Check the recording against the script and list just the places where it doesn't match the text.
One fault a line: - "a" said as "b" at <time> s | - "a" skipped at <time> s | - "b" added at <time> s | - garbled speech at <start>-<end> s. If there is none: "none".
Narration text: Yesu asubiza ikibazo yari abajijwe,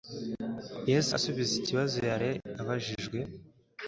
none